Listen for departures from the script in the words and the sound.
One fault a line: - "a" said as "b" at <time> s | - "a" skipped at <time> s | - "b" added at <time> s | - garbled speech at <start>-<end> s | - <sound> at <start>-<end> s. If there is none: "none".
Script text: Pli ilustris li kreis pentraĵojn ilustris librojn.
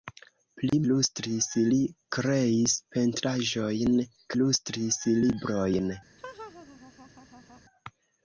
- dropout at 0.7-0.7 s
- laugh at 6.2-7.6 s